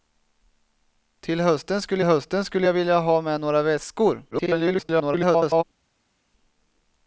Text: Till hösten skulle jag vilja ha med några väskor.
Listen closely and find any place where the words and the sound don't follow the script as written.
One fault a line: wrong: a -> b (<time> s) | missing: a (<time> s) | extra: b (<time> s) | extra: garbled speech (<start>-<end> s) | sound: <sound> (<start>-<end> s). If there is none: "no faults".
extra: hösten skulle (2.0 s)
extra: garbled speech (4.3-5.6 s)